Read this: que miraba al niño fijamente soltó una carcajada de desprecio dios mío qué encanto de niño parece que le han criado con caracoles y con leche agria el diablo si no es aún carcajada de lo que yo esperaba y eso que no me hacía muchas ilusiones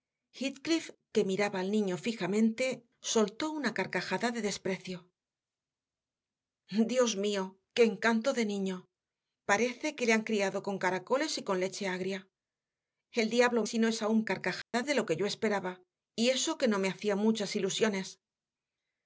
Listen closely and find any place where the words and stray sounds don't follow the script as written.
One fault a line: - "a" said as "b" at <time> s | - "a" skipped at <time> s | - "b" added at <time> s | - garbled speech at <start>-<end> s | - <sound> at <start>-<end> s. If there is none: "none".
- dropout at 14.6-14.7 s